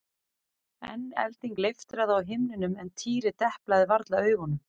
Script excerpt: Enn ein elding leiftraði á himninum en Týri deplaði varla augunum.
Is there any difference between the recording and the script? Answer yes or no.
yes